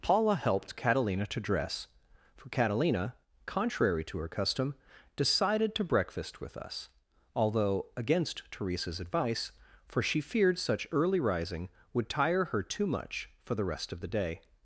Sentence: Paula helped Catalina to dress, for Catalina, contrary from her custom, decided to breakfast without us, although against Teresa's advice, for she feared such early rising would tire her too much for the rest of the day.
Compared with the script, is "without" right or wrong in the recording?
wrong